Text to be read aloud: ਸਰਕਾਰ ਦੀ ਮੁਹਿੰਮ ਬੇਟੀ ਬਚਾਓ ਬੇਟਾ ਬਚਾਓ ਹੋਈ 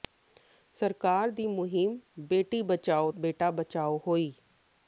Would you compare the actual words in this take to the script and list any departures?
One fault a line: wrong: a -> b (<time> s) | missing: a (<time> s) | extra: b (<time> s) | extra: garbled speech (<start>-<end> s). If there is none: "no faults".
no faults